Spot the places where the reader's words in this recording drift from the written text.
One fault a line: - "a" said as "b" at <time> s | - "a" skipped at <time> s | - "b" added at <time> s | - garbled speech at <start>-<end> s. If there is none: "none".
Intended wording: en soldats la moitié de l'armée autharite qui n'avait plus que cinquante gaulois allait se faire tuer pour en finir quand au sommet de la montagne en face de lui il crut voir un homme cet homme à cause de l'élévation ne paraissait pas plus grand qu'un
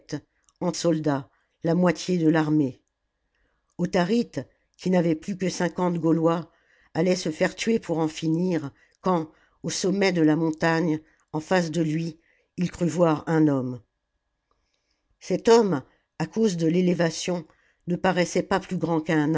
none